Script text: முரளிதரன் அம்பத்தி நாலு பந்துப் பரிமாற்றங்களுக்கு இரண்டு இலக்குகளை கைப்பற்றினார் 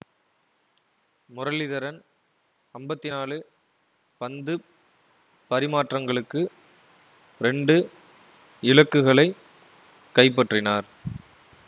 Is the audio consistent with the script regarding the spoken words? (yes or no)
yes